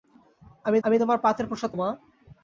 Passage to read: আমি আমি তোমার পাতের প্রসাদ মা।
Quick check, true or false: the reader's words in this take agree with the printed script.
true